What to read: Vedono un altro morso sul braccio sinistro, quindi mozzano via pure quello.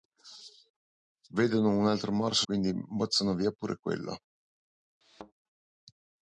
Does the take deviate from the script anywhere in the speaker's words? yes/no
yes